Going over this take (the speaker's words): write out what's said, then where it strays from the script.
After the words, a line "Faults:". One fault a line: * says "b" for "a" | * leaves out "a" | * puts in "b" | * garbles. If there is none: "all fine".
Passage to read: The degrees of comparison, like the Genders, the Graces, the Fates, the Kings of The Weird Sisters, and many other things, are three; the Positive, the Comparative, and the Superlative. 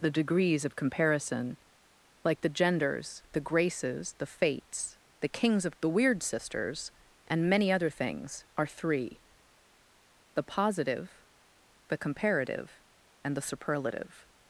The degrees of comparison, like the Genders, the Graces, the Fates, the Kings of The Weird Sisters, and many other things, are three; the Positive, the Comparative, and the Superlative.
Faults:
all fine